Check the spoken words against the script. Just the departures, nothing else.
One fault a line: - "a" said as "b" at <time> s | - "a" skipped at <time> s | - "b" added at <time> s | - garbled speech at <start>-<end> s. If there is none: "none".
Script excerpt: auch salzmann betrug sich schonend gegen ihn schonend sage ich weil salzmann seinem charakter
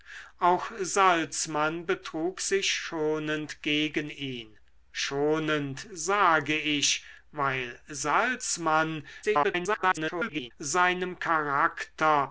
- garbled speech at 9.2-10.5 s